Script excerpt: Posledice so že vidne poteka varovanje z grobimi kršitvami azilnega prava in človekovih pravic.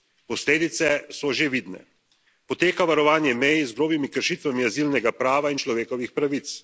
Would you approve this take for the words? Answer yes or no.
no